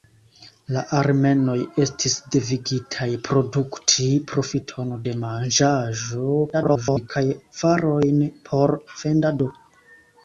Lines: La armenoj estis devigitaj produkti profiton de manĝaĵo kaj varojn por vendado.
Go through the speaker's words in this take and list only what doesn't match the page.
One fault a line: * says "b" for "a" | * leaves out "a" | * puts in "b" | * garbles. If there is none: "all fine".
* garbles